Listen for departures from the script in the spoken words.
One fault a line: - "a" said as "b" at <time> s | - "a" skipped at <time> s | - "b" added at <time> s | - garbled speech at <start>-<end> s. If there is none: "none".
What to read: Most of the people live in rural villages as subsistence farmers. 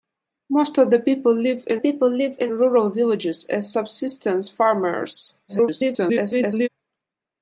- "people live in" added at 1.8 s
- garbled speech at 5.5-6.7 s